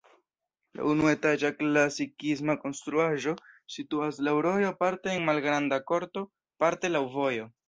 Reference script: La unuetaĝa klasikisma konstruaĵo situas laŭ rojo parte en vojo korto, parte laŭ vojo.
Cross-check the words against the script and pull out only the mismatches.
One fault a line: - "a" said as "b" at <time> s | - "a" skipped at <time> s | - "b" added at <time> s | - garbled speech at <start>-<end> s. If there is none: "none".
- "vojo" said as "malgranda" at 5.3 s